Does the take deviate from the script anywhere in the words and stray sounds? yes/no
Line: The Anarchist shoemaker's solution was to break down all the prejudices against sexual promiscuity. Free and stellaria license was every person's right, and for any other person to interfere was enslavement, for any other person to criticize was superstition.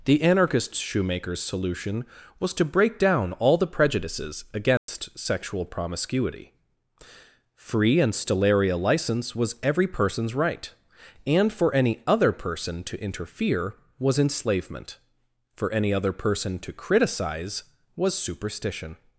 yes